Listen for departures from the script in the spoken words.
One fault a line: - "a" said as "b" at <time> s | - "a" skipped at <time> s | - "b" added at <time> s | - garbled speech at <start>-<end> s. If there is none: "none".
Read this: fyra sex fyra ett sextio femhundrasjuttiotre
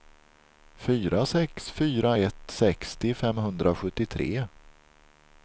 none